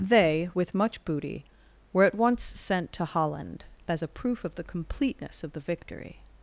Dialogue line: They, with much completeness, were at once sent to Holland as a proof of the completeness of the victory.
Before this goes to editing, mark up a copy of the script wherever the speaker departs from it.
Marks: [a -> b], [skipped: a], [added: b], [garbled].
They, with much [completeness, -> booty] were at once sent to Holland as a proof of the completeness of the victory.